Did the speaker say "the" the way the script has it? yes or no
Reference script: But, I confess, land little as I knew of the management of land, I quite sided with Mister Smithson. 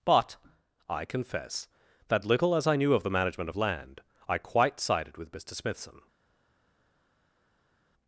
yes